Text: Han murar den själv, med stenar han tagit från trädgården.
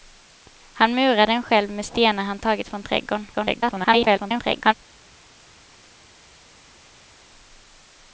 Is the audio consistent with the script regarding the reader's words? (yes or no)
no